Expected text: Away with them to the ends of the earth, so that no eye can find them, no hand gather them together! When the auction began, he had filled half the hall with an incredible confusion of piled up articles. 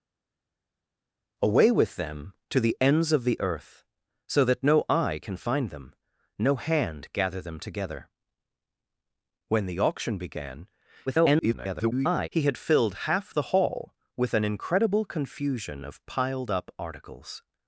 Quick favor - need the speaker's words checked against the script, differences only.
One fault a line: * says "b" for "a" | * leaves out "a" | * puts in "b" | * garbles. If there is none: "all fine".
* garbles